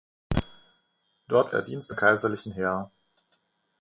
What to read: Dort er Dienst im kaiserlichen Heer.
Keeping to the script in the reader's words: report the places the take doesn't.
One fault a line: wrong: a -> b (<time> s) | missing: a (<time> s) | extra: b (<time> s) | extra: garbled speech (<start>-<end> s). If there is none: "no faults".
no faults